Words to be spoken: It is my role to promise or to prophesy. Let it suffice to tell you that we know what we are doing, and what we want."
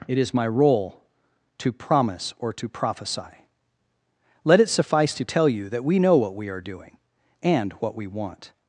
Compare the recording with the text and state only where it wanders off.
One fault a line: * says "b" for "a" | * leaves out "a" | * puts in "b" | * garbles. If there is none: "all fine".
all fine